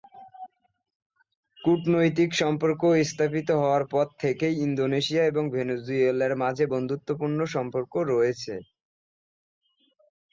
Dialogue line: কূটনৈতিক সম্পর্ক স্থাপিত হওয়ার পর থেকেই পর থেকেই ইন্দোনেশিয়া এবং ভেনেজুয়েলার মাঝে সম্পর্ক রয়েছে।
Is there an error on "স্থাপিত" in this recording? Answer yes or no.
no